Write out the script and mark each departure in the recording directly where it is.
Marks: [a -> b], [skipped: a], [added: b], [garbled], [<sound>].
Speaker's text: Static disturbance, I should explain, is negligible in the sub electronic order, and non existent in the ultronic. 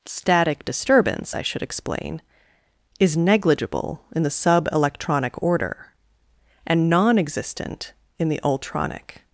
Static disturbance, I should explain, is negligible in the sub electronic order, and non existent in the ultronic.